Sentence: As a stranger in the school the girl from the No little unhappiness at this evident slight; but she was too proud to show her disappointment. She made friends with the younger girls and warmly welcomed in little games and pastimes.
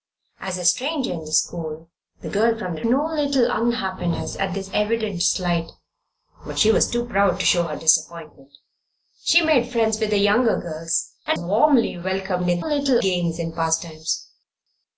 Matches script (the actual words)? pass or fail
pass